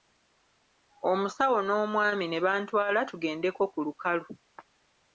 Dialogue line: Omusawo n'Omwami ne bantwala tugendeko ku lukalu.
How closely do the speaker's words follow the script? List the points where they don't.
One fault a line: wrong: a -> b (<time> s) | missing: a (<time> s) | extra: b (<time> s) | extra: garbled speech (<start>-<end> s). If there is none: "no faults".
no faults